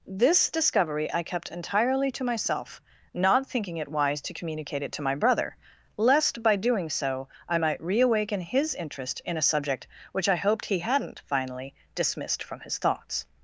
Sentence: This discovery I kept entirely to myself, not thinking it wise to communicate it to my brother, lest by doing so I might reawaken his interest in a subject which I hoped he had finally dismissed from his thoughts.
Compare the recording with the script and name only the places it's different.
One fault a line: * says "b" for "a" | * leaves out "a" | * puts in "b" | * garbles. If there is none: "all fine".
* says "hadn't" for "had"